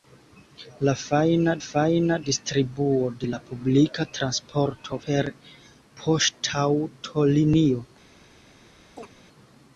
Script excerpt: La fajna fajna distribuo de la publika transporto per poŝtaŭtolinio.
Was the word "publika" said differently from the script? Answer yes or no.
no